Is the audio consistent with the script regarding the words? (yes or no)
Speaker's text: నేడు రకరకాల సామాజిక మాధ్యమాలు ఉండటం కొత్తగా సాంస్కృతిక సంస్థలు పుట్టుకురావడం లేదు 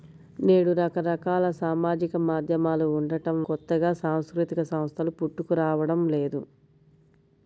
yes